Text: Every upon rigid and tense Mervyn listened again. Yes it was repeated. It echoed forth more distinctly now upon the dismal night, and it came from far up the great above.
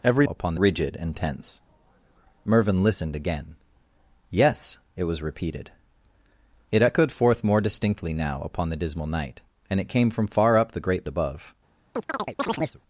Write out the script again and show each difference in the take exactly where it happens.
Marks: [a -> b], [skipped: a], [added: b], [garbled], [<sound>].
Every upon rigid and tense Mervyn listened again. Yes it was repeated. It echoed forth more distinctly now upon the dismal night, and it came from far up the great above. [chirp]